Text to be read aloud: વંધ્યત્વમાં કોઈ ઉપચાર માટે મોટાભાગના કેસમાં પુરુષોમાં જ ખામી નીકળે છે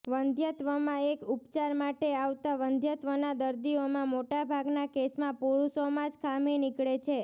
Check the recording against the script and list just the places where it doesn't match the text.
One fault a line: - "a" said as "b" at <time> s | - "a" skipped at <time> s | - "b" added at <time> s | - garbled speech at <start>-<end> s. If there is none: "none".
- "કોઈ" said as "એક" at 1.0 s
- "આવતા વંધ્યત્વના દર્દીઓમાં" added at 2.1 s